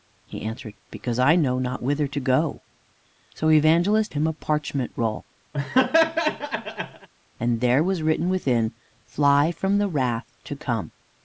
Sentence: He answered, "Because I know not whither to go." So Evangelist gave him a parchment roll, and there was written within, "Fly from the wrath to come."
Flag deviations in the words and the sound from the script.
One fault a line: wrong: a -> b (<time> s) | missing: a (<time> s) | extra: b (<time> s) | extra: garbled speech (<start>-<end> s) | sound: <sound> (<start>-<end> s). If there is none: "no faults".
missing: gave (4.1 s)
sound: laugh (5.5-7.1 s)